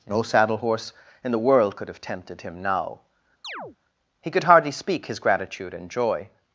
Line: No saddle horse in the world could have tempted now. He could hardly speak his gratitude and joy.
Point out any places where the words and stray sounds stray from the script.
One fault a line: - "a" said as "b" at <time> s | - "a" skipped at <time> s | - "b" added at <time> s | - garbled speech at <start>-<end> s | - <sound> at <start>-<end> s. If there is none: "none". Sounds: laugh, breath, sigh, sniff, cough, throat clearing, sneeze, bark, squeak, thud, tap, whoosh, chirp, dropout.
- "him" added at 2.4 s
- chirp at 3.4-3.8 s